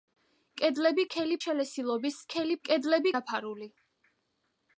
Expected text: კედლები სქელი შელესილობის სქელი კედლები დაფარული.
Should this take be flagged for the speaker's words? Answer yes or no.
no